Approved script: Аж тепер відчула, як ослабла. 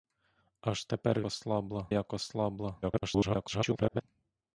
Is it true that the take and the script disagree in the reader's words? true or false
true